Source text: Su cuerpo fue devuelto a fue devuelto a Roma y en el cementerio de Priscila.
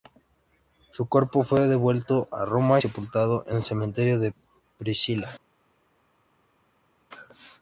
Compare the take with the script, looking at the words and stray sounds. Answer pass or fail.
fail